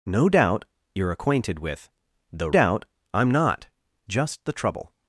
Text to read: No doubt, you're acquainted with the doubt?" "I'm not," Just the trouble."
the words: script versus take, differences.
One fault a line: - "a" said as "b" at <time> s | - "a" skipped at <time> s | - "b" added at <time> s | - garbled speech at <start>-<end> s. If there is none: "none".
none